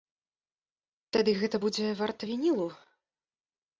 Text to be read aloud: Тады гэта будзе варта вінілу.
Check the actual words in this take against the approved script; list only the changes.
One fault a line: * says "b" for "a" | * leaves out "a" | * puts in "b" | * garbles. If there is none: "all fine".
all fine